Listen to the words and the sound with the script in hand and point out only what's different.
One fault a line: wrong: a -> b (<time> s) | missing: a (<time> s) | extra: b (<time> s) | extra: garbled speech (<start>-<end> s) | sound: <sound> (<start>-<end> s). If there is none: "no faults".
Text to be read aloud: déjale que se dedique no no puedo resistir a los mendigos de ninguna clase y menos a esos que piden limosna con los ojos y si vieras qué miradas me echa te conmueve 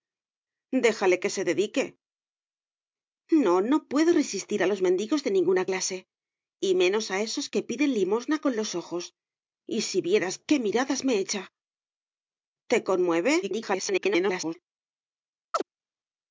extra: garbled speech (13.4-14.5 s)
sound: chirp (15.5-15.6 s)